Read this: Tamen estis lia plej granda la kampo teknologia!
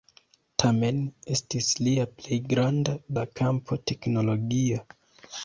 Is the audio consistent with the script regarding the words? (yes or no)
yes